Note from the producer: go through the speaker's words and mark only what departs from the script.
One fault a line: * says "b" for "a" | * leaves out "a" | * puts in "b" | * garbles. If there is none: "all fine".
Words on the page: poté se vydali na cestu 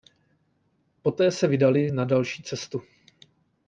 * puts in "další"